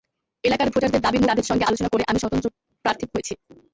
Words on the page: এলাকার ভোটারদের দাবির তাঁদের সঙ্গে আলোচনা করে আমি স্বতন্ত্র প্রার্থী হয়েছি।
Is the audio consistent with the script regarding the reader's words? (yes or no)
yes